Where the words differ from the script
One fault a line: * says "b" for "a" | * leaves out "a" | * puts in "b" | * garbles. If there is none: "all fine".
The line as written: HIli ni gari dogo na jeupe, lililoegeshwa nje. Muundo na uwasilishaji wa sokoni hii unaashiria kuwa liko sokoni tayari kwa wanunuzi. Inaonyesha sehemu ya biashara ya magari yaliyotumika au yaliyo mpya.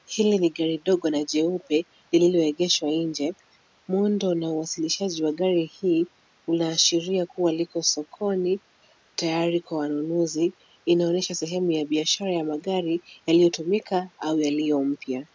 * says "gari" for "sokoni"